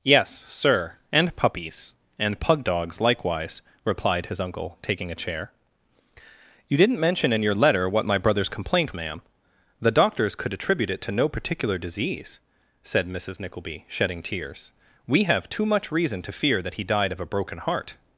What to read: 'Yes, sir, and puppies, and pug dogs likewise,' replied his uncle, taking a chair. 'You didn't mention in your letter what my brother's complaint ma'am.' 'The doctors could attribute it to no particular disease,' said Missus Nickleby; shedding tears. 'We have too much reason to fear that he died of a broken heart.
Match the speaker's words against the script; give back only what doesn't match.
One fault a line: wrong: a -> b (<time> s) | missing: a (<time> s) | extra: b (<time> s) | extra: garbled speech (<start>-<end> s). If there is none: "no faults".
no faults